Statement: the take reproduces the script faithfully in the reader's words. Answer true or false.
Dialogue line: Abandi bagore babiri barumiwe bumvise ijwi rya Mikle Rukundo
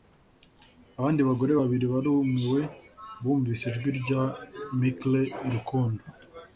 true